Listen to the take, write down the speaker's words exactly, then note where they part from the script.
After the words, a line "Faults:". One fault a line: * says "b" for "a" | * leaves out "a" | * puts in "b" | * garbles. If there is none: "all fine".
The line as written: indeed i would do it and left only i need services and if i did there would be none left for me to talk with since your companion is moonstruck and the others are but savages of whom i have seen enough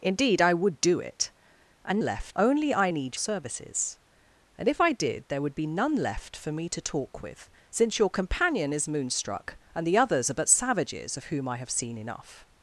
indeed i would do it and left only i need services and if i did there would be none left for me to talk with since your companion is moonstruck and the others are but savages of whom i have seen enough
Faults:
all fine